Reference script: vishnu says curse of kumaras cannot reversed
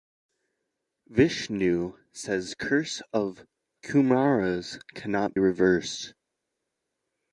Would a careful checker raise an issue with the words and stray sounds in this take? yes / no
no